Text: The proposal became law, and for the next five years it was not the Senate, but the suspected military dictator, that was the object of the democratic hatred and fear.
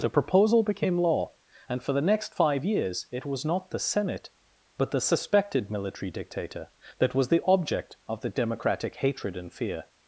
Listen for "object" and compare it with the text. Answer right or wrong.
right